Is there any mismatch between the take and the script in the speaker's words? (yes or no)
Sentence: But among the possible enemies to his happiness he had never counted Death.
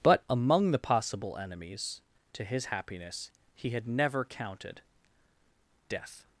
no